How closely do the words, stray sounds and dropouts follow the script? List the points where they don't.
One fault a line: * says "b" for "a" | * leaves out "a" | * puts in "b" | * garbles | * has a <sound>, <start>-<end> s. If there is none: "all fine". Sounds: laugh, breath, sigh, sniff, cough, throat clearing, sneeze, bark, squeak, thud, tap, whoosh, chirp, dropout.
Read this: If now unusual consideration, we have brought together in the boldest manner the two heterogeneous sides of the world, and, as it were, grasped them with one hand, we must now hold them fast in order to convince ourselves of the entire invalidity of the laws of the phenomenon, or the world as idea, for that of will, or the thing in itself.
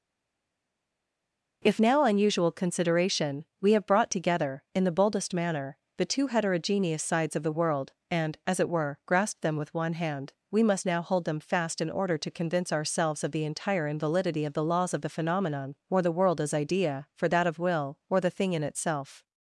all fine